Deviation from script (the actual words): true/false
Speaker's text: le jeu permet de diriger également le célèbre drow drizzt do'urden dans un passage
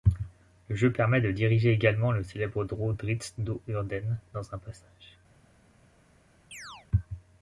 false